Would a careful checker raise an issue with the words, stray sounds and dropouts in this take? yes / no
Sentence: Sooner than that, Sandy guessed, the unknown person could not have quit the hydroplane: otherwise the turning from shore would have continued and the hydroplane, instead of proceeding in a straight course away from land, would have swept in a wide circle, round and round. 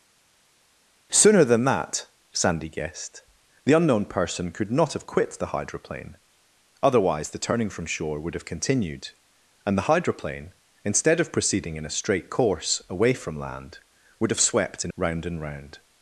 yes